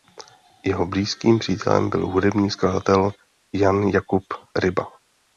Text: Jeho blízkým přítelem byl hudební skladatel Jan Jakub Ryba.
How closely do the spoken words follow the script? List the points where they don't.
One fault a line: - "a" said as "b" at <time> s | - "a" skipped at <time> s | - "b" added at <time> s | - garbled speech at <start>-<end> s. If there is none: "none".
none